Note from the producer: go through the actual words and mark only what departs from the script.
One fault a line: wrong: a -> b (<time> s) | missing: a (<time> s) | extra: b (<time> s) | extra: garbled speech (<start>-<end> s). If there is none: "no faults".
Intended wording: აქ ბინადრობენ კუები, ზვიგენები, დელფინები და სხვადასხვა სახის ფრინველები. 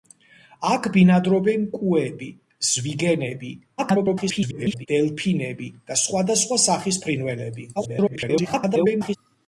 extra: garbled speech (3.8-4.9 s)
extra: garbled speech (7.8-9.2 s)